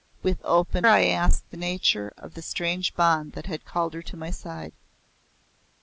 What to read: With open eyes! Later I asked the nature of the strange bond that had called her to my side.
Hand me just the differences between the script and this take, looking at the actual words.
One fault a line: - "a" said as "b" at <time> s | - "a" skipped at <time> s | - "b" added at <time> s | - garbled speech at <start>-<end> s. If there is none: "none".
- "eyes Later" skipped at 0.9 s